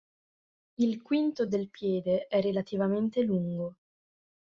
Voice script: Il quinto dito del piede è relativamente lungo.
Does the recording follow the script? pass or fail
fail